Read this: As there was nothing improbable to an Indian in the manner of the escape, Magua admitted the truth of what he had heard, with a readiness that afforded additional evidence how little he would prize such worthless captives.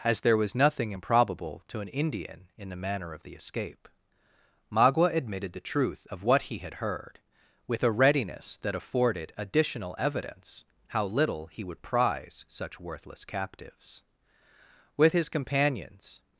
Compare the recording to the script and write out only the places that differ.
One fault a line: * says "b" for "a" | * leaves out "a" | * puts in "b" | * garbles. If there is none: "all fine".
* puts in "With his companions"